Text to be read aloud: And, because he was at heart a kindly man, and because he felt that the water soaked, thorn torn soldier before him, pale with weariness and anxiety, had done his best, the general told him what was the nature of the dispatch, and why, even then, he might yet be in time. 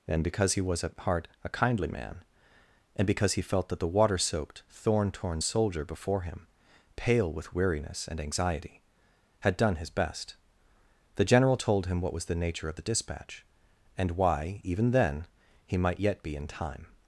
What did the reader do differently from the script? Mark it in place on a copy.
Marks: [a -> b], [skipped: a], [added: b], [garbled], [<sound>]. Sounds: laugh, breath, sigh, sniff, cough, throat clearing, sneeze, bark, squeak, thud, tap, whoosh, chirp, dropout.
And, because he was at heart a kindly man, and because he felt that the water soaked, thorn torn soldier before him, pale with weariness and anxiety, had done his best, the general told him what was the nature of the dispatch, and why, even then, he might yet be in time.